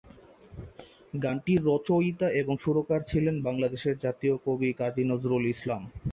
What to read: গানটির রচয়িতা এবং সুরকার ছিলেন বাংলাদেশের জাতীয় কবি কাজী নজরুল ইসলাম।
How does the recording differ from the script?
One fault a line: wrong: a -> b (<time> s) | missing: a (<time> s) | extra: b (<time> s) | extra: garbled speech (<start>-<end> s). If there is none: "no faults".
no faults